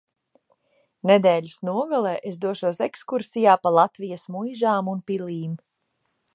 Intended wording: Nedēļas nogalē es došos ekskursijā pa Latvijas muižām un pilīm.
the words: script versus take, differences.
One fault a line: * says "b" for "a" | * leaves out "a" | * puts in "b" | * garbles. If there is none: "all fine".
all fine